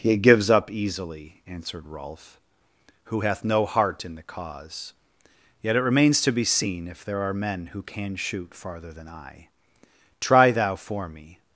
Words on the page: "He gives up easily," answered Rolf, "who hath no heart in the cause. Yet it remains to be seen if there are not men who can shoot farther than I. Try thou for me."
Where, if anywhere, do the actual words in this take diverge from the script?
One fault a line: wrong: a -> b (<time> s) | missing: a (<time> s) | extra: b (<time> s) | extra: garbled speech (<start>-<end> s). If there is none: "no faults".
missing: not (7.3 s)